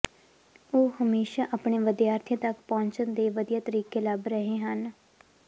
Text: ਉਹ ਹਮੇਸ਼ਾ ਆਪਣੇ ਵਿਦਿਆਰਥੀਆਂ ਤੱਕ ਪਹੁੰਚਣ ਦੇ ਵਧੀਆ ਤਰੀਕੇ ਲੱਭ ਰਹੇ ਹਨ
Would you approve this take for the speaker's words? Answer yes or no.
yes